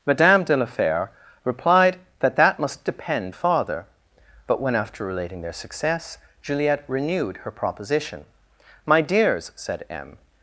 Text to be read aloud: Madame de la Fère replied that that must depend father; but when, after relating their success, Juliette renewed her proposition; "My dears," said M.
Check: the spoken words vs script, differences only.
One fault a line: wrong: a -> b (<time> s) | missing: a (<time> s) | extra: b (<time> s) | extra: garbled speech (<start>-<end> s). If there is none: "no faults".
no faults